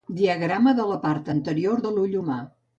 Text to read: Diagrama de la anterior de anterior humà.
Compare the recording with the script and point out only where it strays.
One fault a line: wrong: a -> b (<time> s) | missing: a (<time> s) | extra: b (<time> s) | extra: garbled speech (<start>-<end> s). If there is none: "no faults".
extra: part (1.1 s)
wrong: anterior -> l'ull (2.0 s)